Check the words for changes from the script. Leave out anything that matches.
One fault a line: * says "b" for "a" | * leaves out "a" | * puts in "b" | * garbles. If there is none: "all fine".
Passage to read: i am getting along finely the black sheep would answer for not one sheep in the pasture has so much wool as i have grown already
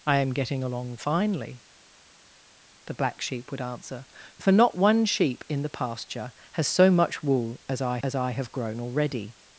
* puts in "as i"